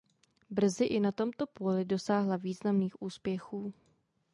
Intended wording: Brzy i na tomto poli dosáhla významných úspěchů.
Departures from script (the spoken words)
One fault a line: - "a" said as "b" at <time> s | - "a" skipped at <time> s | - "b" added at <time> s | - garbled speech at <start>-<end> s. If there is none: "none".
none